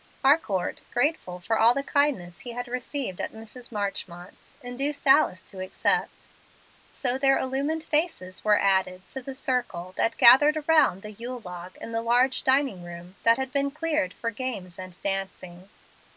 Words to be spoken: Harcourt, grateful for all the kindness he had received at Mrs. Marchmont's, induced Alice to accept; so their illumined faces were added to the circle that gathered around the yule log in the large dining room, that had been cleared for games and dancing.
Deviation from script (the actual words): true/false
false